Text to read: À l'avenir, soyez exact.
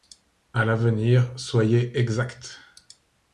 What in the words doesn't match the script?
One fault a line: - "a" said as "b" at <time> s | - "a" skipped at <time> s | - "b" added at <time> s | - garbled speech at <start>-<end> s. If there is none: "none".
none